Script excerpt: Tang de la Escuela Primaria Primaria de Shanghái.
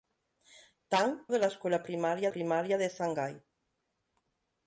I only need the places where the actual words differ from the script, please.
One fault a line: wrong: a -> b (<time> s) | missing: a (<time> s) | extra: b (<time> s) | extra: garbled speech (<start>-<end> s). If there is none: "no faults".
no faults